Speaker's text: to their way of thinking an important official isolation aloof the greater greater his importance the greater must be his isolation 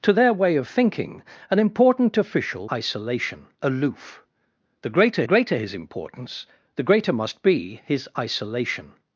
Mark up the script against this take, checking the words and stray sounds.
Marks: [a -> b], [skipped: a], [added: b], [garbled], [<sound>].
to their way of thinking an important official isolation aloof the greater greater his importance the greater must be his isolation